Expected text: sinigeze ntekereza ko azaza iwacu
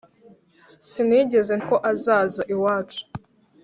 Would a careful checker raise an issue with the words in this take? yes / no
yes